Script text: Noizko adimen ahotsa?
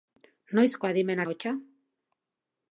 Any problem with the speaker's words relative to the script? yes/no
no